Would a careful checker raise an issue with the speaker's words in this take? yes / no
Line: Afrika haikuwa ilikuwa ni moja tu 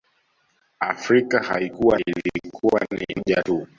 no